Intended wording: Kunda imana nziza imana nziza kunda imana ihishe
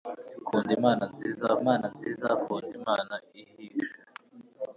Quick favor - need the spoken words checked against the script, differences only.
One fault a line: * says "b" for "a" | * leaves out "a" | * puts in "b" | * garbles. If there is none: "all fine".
all fine